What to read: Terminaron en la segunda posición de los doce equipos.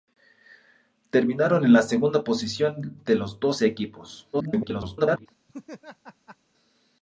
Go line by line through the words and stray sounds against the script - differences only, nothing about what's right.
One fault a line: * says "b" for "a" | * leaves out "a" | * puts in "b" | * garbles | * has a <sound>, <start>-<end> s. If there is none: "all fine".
* garbles
* has a laugh, 5.5-6.4 s